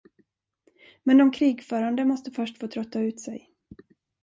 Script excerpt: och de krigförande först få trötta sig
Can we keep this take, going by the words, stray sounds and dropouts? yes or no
no